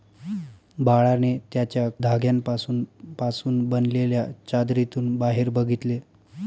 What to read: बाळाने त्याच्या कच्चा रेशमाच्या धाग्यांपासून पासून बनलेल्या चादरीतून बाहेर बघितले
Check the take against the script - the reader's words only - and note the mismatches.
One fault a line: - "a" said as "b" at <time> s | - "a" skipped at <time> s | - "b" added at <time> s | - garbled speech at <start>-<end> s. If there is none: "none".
- "कच्चा रेशमाच्या" skipped at 1.9 s